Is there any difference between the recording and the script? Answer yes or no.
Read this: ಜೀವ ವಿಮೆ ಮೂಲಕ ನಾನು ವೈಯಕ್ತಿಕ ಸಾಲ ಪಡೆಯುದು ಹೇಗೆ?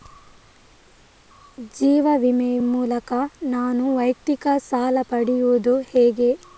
no